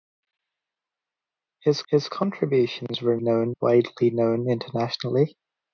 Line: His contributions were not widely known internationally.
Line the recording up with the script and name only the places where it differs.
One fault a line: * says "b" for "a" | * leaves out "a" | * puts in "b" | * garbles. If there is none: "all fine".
* puts in "his"
* says "known" for "not"